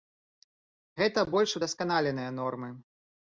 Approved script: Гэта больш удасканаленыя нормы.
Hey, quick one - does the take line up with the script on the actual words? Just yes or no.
yes